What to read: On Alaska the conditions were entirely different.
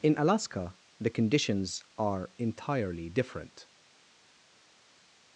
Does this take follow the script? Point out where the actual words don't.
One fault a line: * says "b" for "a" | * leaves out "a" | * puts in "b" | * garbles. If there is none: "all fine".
* says "In" for "On"
* says "are" for "were"